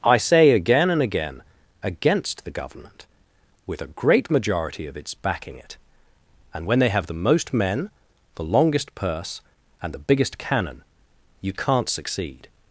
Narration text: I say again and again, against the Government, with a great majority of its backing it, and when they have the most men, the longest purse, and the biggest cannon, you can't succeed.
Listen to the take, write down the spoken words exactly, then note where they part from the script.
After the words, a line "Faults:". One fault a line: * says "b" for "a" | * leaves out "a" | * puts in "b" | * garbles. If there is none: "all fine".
I say again and again, against the Government, with a great majority of its backing it, and when they have the most men, the longest purse, and the biggest cannon, you can't succeed.
Faults:
all fine